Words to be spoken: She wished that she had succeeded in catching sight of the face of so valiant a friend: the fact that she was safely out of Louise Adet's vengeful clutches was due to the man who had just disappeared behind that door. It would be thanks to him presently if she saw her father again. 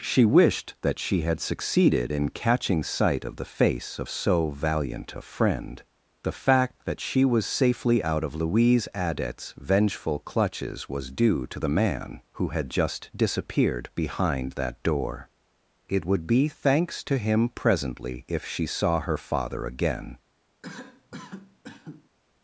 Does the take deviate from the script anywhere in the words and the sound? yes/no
yes